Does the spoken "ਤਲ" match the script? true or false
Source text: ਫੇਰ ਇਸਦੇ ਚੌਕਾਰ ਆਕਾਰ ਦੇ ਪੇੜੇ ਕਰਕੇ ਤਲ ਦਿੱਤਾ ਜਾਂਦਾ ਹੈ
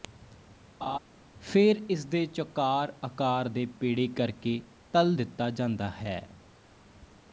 true